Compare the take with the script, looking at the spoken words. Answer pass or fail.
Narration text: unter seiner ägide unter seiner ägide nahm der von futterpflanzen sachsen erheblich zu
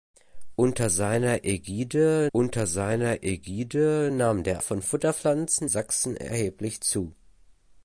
pass